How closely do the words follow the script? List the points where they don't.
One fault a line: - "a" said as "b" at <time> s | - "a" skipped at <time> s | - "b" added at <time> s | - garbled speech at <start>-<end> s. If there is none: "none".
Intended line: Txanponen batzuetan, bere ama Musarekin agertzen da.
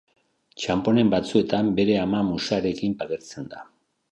none